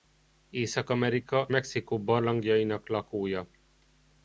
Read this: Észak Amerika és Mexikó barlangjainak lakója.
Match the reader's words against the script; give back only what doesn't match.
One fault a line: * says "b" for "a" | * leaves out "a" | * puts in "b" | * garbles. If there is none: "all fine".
* leaves out "és"